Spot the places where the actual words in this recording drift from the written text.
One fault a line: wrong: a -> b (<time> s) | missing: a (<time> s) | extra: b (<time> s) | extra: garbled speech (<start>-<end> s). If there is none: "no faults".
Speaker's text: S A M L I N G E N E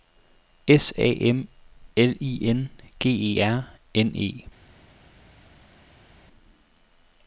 extra: R (3.4 s)